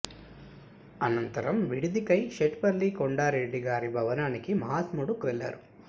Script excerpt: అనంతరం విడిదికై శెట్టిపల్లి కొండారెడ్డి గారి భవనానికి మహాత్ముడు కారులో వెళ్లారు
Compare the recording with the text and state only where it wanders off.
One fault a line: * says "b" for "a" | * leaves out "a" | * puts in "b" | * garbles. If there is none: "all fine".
* leaves out "కారులో"